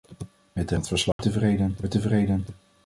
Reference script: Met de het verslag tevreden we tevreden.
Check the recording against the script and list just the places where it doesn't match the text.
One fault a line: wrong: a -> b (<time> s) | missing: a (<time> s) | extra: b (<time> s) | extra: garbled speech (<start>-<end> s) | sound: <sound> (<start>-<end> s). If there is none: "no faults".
sound: dropout (1.1-1.2 s)